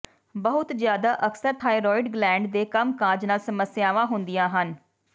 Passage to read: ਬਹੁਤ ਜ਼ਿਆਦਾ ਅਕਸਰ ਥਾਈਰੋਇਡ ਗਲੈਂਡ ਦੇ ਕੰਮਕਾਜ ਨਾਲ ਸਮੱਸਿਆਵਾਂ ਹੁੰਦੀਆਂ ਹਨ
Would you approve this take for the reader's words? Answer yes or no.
yes